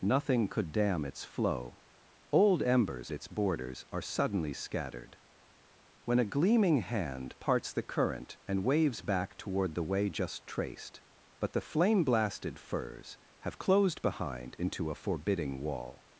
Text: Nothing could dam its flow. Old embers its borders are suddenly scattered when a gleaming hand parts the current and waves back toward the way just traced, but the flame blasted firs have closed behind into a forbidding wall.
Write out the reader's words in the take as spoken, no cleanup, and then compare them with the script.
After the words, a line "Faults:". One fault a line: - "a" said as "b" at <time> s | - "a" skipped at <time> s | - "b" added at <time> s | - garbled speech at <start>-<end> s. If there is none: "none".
Nothing could dam its flow. Old embers its borders are suddenly scattered when a gleaming hand parts the current and waves back toward the way just traced, but the flame blasted firs have closed behind into a forbidding wall.
Faults:
none